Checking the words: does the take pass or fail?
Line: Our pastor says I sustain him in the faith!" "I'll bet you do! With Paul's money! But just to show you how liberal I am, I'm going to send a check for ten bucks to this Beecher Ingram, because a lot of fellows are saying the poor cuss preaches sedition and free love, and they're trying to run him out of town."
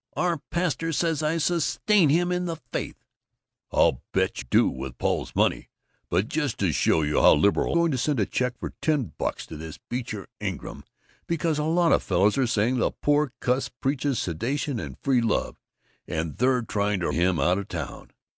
fail